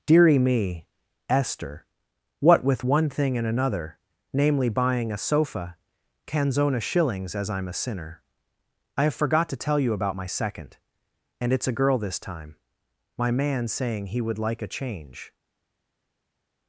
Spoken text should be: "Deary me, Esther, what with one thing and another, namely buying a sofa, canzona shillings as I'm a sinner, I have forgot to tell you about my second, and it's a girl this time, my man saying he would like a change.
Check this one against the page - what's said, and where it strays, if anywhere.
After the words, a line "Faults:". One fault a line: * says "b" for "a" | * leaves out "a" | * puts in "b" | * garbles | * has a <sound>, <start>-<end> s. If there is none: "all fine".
"Deary me, Esther, what with one thing and another, namely buying a sofa, canzona shillings as I'm a sinner, I have forgot to tell you about my second, and it's a girl this time, my man saying he would like a change.
Faults:
all fine